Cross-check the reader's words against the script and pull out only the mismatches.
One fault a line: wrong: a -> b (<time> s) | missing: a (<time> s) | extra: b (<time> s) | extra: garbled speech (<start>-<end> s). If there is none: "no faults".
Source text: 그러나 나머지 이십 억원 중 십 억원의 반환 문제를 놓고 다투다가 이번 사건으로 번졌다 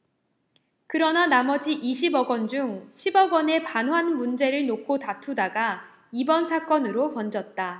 no faults